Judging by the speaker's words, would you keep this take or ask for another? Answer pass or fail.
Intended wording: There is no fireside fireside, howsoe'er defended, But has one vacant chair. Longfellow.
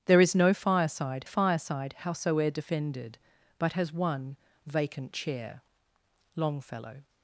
pass